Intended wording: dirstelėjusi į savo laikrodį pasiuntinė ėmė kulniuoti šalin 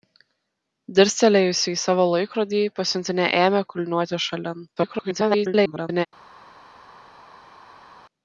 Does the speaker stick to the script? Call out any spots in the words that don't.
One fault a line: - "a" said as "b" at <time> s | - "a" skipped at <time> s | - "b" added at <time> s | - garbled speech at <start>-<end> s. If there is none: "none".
- garbled speech at 4.8-6.1 s